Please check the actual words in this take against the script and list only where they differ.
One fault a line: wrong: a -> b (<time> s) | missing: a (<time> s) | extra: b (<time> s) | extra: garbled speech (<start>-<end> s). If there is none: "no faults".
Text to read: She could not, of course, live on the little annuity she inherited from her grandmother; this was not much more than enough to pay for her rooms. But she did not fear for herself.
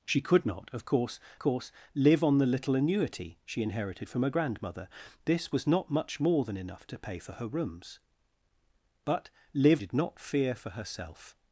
extra: course (1.4 s)
wrong: she -> live (9.5 s)